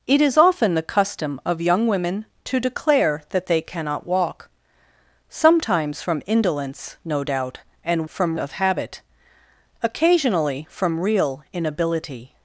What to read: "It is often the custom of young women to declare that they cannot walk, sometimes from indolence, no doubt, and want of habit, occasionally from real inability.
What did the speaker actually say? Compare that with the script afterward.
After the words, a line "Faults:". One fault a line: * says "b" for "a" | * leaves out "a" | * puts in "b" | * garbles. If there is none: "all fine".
"It is often the custom of young women to declare that they cannot walk, sometimes from indolence, no doubt, and from of habit, occasionally from real inability.
Faults:
* says "from" for "want"